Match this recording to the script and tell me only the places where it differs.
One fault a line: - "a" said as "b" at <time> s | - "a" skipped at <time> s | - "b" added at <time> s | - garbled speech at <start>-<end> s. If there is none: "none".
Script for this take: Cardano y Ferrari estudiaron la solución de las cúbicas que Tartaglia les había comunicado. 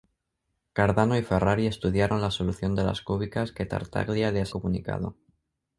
- "había" skipped at 4.5 s